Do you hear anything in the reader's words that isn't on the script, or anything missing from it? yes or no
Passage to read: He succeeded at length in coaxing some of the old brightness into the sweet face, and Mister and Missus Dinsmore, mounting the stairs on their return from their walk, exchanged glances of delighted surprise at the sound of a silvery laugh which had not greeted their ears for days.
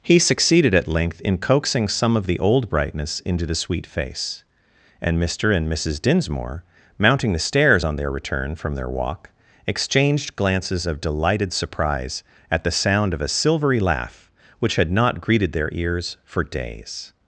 no